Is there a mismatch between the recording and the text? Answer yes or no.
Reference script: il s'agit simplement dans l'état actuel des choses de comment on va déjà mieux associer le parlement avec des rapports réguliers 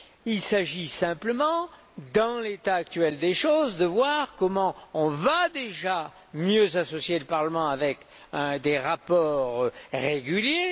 yes